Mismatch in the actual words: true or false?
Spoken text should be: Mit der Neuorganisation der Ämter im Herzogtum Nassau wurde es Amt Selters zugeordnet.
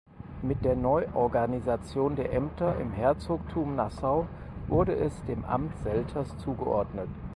true